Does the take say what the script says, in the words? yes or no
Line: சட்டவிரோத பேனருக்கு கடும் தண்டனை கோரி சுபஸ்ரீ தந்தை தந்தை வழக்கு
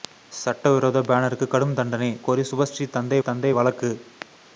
yes